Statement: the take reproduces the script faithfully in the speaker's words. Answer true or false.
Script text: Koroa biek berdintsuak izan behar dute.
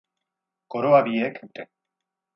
false